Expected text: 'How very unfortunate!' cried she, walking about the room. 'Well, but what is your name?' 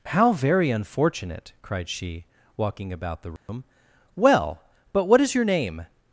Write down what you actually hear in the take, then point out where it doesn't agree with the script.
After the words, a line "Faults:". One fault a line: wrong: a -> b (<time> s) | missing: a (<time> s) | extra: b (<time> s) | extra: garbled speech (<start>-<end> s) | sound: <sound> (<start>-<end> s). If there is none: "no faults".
'How very unfortunate!' cried she, walking about the room. 'Well, but what is your name?'
Faults:
sound: dropout (3.4-3.5 s)